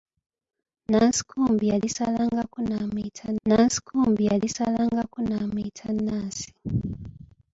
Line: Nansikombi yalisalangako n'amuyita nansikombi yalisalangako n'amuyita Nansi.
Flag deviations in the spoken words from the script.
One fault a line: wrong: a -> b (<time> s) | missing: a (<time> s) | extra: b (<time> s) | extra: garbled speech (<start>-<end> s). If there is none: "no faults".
no faults